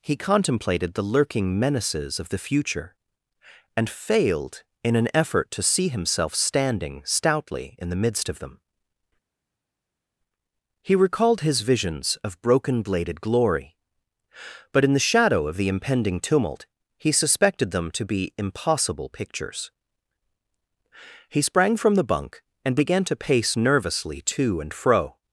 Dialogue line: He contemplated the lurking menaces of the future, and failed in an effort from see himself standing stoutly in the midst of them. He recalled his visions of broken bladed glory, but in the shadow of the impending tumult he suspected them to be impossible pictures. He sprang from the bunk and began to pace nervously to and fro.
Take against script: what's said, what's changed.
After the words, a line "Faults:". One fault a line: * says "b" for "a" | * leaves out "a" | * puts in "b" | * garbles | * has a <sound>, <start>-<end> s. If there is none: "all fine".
He contemplated the lurking menaces of the future, and failed in an effort to see himself standing stoutly in the midst of them. He recalled his visions of broken bladed glory, but in the shadow of the impending tumult he suspected them to be impossible pictures. He sprang from the bunk and began to pace nervously to and fro.
Faults:
* says "to" for "from"